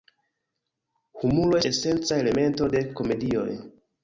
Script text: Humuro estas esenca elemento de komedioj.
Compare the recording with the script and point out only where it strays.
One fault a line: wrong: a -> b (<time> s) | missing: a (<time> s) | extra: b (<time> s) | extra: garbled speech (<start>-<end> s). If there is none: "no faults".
missing: estas (1.6 s)